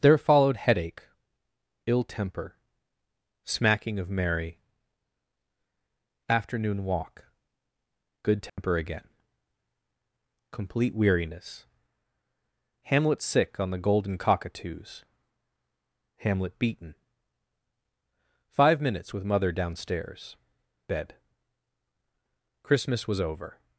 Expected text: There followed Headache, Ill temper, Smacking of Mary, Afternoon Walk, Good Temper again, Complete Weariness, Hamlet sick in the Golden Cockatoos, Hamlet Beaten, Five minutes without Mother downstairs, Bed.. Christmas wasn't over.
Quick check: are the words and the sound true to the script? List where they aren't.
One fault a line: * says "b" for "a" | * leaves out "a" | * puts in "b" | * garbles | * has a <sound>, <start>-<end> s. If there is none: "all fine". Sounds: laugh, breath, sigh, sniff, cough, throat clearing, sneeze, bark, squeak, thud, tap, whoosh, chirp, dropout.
* has a dropout, 8.5-8.6 s
* says "on" for "in"
* says "with" for "without"
* says "was" for "wasn't"